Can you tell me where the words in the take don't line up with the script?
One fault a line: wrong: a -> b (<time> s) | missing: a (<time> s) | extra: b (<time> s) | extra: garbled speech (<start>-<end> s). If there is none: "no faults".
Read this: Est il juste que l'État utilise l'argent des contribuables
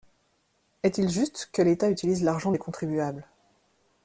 no faults